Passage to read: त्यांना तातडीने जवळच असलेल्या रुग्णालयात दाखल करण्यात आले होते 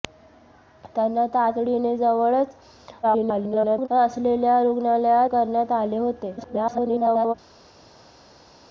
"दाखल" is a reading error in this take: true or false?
true